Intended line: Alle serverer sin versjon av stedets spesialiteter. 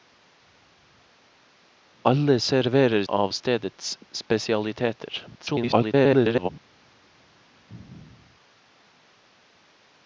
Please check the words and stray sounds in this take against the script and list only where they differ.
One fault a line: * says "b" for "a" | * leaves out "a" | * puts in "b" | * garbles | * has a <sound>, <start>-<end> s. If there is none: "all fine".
* leaves out "sin versjon"
* garbles